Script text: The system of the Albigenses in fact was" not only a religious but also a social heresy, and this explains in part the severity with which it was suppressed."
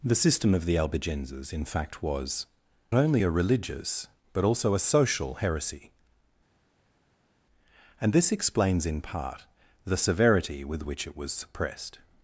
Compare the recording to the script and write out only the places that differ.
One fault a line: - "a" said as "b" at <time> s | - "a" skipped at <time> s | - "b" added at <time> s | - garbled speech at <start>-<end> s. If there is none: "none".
- "not" skipped at 2.5 s